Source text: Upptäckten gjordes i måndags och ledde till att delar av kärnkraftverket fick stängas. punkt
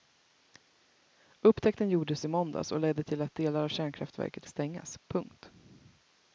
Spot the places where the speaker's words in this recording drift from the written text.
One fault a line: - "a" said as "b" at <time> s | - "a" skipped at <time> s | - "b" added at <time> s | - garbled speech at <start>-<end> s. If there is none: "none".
- "fick" skipped at 4.5 s